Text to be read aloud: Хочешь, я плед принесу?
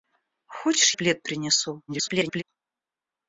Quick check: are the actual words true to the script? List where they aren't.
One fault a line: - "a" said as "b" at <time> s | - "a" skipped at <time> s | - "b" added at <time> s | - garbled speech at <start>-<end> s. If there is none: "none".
- "я" skipped at 0.9 s
- garbled speech at 1.9-2.4 s